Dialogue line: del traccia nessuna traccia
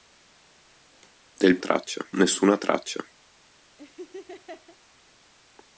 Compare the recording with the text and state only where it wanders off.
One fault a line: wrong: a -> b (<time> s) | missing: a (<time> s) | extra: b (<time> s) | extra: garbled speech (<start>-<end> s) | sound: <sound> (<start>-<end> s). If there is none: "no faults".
sound: laugh (3.8-4.8 s)